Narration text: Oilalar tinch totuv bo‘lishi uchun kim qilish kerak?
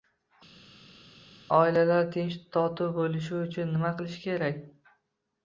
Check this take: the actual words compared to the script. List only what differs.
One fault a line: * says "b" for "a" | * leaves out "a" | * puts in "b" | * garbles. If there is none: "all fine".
* says "nima" for "kim"